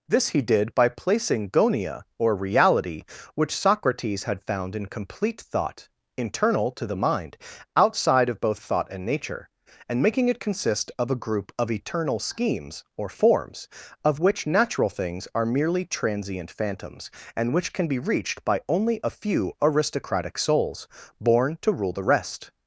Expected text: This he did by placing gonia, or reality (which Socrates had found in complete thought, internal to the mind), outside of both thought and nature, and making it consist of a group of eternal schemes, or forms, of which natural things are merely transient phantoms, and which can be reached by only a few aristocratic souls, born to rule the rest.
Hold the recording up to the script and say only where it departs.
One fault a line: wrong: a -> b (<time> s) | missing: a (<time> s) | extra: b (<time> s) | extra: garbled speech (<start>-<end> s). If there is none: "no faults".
no faults